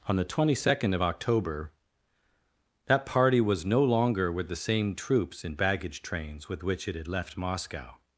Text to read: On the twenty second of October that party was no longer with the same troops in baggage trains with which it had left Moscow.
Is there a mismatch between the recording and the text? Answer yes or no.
no